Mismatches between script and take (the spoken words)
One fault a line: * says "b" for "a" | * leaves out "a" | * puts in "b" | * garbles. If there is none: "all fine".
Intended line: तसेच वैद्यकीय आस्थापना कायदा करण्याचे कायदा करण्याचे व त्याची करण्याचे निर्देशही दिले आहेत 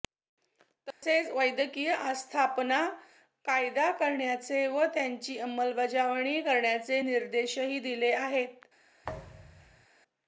* leaves out "कायदा करण्याचे"
* puts in "अंमलबजावणी"